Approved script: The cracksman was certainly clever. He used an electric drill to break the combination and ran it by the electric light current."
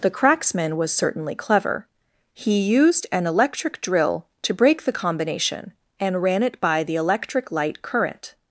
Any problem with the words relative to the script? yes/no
no